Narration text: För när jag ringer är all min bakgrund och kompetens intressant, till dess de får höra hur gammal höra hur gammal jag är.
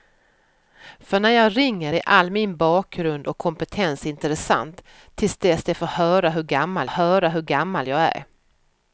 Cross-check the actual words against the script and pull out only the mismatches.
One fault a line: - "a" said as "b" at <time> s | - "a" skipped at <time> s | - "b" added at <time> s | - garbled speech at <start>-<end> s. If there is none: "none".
none